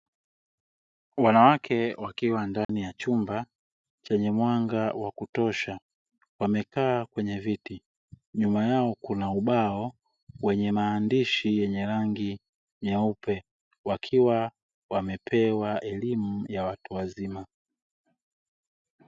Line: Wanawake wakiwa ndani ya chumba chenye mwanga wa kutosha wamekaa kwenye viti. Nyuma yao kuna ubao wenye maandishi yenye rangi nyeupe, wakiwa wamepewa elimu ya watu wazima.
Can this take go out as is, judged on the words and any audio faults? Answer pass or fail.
fail